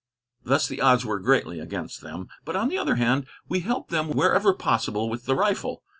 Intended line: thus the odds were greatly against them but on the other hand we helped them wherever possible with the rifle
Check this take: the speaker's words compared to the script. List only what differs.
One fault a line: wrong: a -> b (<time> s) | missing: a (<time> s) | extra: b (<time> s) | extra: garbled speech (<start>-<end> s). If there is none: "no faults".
no faults